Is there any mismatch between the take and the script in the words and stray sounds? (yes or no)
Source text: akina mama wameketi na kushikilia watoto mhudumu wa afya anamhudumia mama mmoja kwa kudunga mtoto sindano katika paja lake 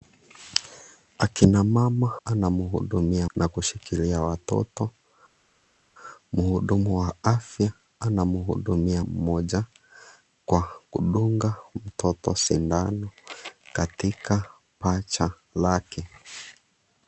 yes